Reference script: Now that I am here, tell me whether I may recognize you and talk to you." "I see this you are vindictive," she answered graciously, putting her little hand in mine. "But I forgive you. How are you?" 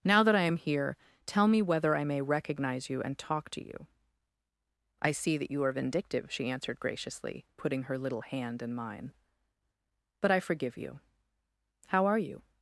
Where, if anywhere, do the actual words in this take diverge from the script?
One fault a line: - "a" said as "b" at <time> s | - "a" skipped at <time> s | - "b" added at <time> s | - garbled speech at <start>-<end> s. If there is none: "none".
- "this" said as "that" at 5.4 s